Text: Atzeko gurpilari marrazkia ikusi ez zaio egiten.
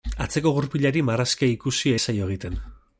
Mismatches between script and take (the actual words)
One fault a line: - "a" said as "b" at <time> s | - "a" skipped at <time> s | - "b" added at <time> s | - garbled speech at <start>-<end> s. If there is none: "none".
none